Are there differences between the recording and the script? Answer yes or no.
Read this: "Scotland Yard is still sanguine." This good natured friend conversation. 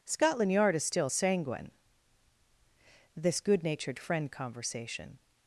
no